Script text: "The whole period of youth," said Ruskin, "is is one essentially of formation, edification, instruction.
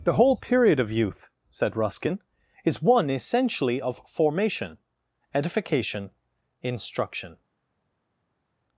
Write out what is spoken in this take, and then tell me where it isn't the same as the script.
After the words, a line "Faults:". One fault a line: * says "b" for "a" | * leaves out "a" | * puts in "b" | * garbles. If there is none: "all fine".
"The whole period of youth," said Ruskin, "is one essentially of formation, edification, instruction.
Faults:
* leaves out "is"